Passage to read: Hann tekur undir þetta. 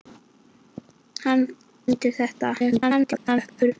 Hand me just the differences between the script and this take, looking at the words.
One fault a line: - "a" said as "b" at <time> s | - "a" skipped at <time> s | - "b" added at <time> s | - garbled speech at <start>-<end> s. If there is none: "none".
- "tekur" skipped at 1.4 s
- garbled speech at 2.6-3.7 s